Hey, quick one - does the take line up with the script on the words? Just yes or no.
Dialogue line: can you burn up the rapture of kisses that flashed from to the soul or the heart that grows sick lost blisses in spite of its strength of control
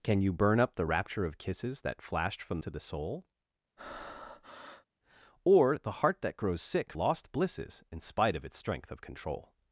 yes